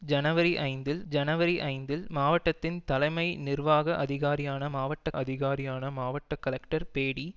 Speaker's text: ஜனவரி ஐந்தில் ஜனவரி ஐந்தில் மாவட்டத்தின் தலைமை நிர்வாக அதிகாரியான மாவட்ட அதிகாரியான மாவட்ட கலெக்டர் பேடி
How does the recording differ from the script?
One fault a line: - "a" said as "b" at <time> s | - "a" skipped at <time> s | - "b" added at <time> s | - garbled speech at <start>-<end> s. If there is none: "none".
none